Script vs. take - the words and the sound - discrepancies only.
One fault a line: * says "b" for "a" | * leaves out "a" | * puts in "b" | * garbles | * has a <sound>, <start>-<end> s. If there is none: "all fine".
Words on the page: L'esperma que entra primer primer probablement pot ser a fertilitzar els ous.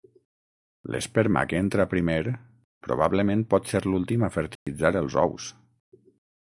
* leaves out "primer"
* puts in "l'últim"
* has a dropout, 4.6-4.7 s